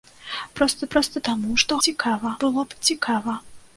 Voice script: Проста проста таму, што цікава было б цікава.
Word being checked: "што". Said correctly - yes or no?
yes